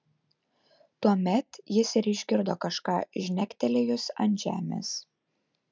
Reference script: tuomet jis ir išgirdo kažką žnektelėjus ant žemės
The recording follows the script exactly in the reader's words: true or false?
true